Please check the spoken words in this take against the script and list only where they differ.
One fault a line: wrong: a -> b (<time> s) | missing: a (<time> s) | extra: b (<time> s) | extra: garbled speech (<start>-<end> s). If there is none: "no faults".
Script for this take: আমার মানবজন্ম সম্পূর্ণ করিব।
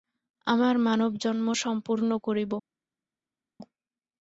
no faults